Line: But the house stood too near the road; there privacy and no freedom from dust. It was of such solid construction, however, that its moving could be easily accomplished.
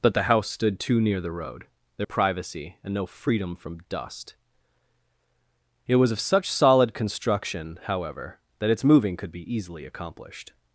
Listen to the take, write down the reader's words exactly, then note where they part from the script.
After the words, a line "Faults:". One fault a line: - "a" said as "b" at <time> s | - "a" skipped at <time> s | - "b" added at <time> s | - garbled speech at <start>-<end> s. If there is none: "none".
But the house stood too near the road; there privacy and no freedom from dust. It was of such solid construction, however, that its moving could be easily accomplished.
Faults:
none